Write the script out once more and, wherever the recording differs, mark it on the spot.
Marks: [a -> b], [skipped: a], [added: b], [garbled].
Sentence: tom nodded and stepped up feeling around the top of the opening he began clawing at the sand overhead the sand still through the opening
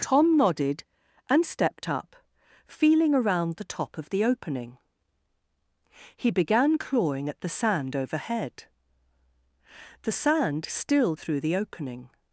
tom nodded and stepped up feeling around the top of the opening he began clawing at the sand overhead the sand still through the opening